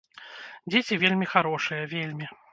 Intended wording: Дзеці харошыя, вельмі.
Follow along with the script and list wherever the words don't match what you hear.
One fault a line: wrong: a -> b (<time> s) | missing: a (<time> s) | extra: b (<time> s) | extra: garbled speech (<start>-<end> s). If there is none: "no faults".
extra: вельмі (1.0 s)